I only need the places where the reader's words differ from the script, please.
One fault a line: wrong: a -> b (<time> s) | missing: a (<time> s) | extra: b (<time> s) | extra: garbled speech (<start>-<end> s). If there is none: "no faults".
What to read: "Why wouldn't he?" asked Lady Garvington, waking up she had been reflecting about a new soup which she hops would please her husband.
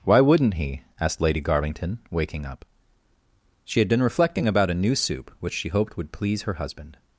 wrong: hops -> hoped (5.7 s)